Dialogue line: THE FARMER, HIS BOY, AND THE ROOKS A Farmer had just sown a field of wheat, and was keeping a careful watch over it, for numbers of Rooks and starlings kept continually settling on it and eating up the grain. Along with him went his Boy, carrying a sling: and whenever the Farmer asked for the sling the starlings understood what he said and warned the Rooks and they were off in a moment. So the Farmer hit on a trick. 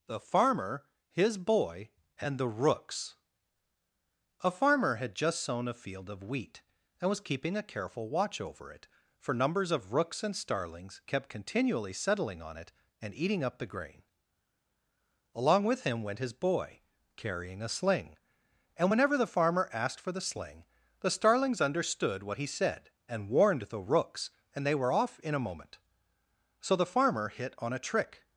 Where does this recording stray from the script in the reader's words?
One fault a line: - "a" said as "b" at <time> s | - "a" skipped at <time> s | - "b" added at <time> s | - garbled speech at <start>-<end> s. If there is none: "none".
none